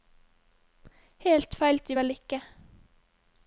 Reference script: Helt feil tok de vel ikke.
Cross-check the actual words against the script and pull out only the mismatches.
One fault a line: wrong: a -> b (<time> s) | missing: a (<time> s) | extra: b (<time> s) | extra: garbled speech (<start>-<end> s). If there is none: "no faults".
missing: tok (1.8 s)